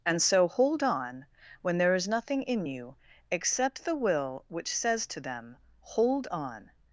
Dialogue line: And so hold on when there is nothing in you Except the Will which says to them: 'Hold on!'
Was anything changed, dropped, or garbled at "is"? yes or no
no